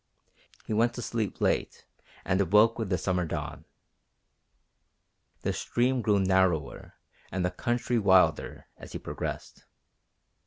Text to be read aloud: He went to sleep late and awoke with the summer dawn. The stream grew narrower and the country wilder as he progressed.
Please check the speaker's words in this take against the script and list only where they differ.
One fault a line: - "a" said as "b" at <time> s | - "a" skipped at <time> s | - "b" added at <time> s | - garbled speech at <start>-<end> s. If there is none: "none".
none